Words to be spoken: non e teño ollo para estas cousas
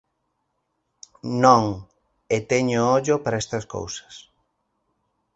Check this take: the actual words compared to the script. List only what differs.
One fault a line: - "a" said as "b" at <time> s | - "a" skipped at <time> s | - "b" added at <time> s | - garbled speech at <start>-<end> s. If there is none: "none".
none